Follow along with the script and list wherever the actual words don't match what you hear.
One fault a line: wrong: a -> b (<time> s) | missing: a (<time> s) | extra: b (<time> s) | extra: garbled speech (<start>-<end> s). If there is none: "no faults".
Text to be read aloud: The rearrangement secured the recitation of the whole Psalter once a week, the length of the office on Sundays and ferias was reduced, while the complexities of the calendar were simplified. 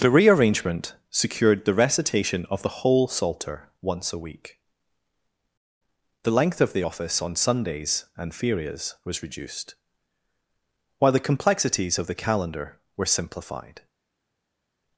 no faults